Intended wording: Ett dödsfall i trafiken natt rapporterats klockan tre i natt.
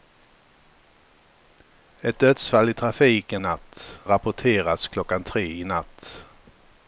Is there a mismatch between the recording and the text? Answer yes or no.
no